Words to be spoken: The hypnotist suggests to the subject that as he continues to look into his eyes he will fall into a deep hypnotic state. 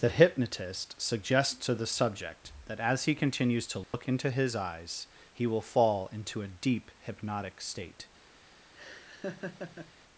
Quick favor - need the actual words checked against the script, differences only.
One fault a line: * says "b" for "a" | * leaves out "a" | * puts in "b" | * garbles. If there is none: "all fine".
all fine